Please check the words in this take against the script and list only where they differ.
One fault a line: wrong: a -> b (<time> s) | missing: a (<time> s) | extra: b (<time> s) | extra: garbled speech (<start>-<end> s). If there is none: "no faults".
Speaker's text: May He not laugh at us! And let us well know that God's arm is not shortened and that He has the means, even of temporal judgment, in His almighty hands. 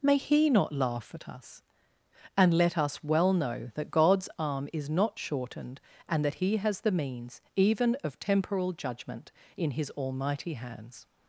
no faults